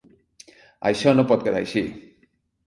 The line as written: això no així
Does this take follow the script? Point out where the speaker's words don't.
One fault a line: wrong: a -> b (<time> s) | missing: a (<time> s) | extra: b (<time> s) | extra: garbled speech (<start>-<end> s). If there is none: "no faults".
extra: pot quedar (1.3 s)